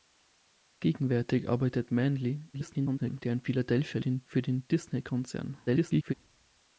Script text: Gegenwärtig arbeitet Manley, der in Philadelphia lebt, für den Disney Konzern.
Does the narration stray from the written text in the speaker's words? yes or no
yes